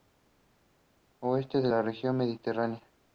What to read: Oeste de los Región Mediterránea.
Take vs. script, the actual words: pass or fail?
fail